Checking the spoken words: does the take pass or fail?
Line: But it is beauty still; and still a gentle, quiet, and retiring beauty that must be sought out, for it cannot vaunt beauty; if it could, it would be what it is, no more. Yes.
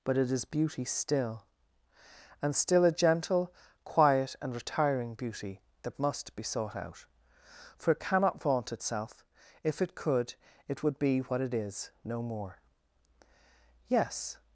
fail